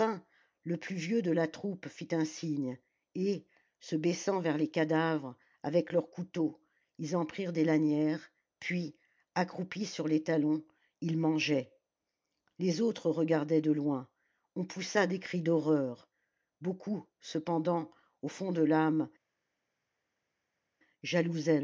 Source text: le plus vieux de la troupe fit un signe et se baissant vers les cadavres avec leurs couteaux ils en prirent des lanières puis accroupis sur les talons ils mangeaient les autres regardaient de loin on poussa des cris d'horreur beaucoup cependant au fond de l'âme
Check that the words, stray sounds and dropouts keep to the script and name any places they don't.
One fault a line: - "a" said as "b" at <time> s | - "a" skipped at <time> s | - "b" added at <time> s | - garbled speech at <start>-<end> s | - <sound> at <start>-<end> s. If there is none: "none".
none